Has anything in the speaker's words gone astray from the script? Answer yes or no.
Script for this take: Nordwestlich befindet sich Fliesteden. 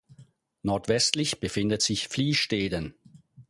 no